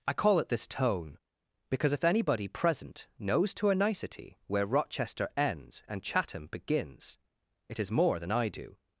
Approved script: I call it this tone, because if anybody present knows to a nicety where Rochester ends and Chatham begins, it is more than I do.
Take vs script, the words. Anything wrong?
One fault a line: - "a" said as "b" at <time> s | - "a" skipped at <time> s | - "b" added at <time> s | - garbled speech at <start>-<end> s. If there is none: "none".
none